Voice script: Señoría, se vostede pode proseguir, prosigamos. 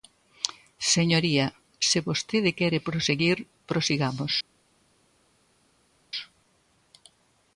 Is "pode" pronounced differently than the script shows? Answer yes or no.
yes